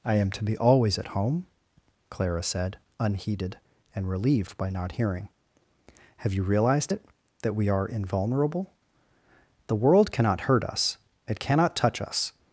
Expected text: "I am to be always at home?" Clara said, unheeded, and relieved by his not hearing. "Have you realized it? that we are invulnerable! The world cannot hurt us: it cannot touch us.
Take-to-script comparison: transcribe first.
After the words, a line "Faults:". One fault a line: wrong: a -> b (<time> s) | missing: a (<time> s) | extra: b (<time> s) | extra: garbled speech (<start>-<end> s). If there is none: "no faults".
"I am to be always at home?" Clara said, unheeded, and relieved by not hearing. "Have you realized it? that we are invulnerable! The world cannot hurt us: it cannot touch us.
Faults:
missing: his (4.7 s)